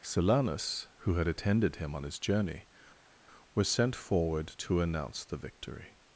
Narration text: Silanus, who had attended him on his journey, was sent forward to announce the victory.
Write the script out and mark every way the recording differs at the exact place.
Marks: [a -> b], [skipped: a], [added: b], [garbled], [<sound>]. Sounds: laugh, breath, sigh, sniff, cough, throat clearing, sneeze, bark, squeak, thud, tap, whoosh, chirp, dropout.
Silanus, who had attended him on his journey, was sent forward to announce the victory.